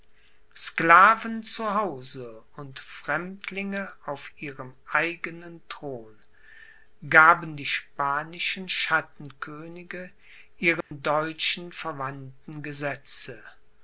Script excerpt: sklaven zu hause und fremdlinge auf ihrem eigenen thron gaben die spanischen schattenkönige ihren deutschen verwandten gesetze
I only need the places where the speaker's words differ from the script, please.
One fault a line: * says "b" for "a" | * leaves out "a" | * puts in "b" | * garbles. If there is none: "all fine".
all fine